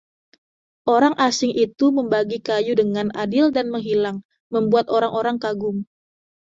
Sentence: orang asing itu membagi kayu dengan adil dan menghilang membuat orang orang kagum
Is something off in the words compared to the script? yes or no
no